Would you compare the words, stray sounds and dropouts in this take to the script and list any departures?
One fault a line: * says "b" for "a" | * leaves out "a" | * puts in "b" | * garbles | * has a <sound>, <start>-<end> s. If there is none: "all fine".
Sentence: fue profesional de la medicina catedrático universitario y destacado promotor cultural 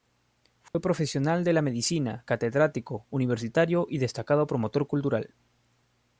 * has a dropout, 0.7-0.7 s